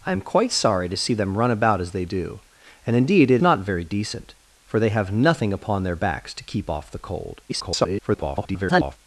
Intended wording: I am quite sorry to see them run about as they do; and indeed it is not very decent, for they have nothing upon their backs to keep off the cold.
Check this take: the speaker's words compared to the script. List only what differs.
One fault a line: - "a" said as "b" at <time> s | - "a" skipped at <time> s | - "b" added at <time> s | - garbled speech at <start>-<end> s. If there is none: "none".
- "is" skipped at 3.4 s
- garbled speech at 7.5-9.0 s